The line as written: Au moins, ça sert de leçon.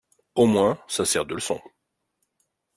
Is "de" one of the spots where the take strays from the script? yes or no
no